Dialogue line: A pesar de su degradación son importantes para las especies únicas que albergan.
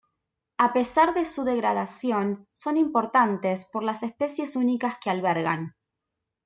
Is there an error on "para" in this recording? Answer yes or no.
yes